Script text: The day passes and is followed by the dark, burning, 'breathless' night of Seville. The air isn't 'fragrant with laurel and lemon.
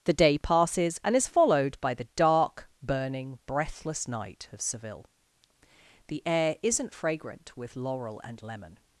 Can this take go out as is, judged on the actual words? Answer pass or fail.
pass